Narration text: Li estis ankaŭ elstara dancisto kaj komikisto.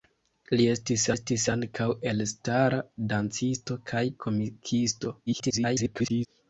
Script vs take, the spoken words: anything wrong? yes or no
yes